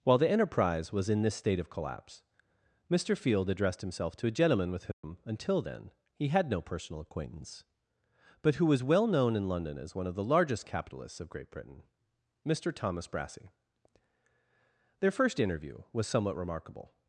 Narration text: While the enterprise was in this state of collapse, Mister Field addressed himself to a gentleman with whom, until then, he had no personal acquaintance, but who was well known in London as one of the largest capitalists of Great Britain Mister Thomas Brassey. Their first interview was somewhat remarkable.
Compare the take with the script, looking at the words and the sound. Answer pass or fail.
fail